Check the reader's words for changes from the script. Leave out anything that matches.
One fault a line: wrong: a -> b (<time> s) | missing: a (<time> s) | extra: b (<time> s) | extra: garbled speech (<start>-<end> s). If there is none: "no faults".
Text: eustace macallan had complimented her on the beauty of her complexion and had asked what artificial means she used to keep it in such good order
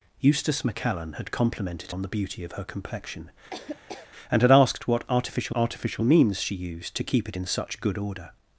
missing: her (1.9 s)
extra: artificial (5.5 s)